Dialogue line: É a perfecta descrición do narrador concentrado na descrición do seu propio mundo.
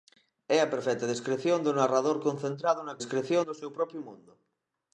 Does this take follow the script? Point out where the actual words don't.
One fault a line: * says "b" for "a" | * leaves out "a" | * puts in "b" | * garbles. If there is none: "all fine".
all fine